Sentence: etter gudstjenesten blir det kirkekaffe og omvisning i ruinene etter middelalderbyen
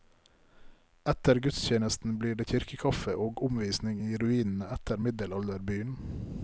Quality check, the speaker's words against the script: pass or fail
pass